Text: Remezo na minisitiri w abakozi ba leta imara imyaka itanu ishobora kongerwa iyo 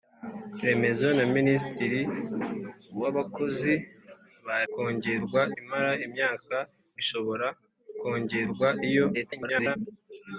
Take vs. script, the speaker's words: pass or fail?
fail